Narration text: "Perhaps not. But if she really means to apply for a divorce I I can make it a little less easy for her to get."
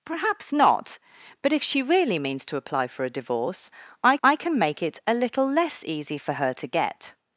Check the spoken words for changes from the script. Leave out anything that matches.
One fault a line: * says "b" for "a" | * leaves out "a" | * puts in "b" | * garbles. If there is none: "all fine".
all fine